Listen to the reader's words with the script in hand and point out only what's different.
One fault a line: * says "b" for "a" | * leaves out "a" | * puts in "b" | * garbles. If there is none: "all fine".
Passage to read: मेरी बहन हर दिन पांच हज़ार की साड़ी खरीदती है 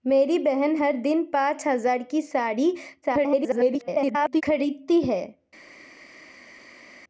* garbles